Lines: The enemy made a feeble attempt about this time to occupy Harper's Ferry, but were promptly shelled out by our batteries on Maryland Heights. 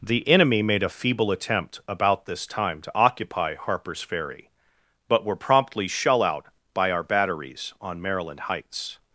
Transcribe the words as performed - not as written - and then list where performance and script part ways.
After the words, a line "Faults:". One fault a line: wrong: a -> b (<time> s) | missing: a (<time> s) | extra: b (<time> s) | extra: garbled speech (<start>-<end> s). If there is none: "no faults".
The enemy made a feeble attempt about this time to occupy Harper's Ferry, but were promptly shell out by our batteries on Maryland Heights.
Faults:
wrong: shelled -> shell (5.9 s)